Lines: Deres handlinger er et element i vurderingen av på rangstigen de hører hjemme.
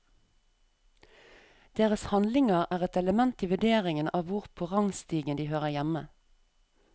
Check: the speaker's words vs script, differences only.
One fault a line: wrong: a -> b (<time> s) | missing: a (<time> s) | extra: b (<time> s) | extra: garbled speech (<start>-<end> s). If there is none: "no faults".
extra: hvor (4.3 s)